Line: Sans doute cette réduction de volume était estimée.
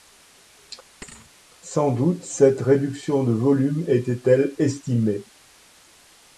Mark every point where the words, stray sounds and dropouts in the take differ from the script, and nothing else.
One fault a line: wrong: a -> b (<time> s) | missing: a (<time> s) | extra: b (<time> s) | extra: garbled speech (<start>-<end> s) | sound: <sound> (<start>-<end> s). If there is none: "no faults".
sound: thud (1.0-1.3 s)
extra: elle (4.3 s)